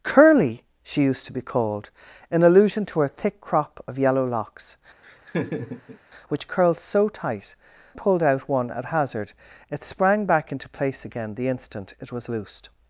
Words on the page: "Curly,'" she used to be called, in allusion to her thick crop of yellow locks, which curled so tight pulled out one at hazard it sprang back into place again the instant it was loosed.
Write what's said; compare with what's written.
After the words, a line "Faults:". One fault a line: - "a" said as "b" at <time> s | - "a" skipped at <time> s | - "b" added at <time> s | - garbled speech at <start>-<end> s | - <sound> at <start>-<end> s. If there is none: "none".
"Curly,'" she used to be called, in allusion to her thick crop of yellow locks, which curled so tight pulled out one at hazard it sprang back into place again the instant it was loosed.
Faults:
- laugh at 5.0-6.0 s